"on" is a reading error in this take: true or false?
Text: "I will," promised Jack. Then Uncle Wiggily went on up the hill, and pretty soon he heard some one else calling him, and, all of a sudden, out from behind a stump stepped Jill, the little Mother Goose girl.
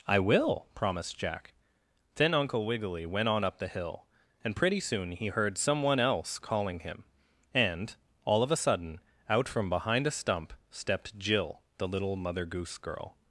false